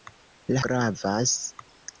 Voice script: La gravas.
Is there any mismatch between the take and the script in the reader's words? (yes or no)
no